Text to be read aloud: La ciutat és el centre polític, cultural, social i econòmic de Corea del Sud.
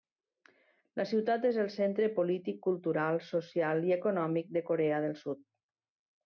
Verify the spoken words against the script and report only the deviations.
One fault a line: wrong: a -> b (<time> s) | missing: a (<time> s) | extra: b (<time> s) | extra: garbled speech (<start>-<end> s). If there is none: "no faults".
no faults